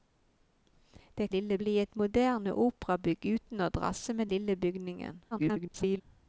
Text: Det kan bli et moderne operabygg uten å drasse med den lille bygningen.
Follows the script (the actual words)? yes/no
no